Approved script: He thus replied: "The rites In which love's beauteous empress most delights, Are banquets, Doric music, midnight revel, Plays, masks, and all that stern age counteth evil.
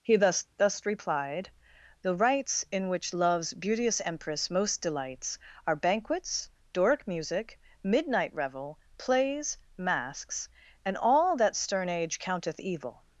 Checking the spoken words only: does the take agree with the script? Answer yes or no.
no